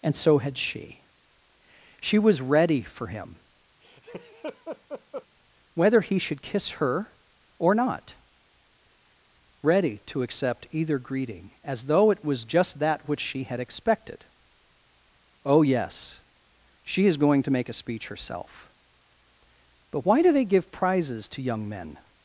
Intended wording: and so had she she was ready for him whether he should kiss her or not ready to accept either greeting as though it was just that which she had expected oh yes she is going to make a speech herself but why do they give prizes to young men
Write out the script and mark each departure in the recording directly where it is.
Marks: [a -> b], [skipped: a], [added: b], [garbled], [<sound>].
and so had she she was ready for him [laugh] whether he should kiss her or not ready to accept either greeting as though it was just that which she had expected oh yes she is going to make a speech herself but why do they give prizes to young men